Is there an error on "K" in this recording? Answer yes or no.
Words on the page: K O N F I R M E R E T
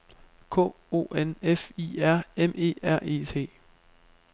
no